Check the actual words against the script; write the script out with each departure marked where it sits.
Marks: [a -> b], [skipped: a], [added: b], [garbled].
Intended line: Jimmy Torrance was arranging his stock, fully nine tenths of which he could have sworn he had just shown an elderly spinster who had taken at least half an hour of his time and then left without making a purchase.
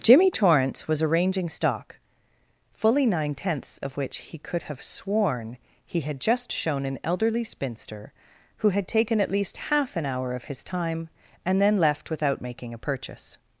Jimmy Torrance was arranging [skipped: his] stock, fully nine tenths of which he could have sworn he had just shown an elderly spinster who had taken at least half an hour of his time and then left without making a purchase.